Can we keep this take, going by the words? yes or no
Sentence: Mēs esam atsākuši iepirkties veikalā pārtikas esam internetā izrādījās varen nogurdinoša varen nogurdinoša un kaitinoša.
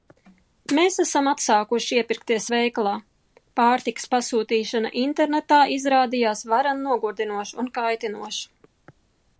no